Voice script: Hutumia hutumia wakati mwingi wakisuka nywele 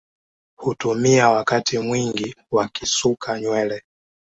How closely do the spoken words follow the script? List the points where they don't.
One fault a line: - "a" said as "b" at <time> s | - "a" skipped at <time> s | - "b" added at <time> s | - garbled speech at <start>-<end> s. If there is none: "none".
- "hutumia" skipped at 1.3 s